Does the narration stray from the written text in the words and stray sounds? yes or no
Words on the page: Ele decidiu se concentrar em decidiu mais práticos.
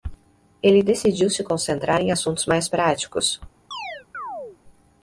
yes